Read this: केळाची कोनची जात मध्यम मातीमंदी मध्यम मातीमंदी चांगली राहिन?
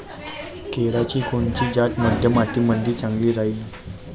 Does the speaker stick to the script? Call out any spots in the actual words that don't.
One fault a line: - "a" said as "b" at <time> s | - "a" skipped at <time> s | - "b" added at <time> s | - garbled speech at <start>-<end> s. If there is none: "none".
- "मध्यम मातीमंदी" skipped at 2.9 s